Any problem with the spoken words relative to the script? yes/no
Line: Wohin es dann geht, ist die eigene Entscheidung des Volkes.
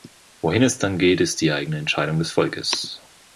no